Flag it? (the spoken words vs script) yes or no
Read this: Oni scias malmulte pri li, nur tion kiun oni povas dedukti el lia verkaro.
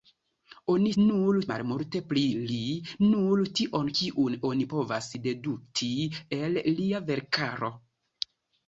yes